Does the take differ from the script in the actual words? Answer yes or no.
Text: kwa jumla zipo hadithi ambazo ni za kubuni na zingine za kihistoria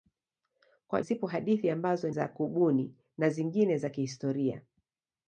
yes